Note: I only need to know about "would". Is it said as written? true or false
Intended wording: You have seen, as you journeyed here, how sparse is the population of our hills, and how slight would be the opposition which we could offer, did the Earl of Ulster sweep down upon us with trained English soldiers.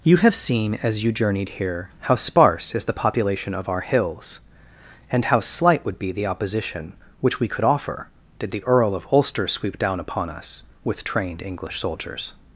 true